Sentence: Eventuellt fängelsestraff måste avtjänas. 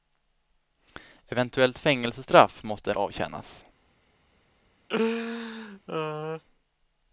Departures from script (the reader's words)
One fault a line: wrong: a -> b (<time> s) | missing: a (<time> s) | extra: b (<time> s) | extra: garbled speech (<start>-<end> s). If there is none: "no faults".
no faults